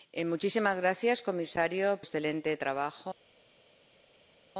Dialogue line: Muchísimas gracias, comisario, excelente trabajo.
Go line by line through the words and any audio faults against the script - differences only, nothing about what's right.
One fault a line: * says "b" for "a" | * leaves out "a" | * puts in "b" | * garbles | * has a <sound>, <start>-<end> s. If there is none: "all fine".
all fine